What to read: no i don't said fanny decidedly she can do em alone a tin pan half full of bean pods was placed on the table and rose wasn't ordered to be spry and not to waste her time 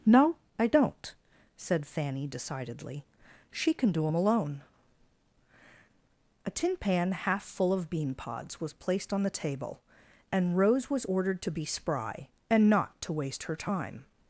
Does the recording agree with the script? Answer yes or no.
no